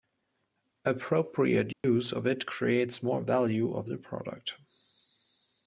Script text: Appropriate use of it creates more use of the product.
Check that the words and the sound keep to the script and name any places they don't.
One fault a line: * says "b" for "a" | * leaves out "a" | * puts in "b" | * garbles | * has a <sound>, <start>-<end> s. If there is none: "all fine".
* has a dropout, 1.7-1.8 s
* says "value" for "use"